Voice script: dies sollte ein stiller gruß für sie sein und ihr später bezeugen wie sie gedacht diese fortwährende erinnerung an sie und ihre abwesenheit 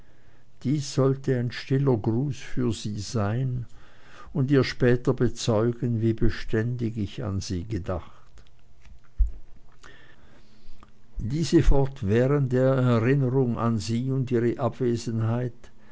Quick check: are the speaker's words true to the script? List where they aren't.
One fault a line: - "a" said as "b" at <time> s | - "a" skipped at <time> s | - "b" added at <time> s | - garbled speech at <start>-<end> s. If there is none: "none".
- "beständig ich an" added at 6.1 s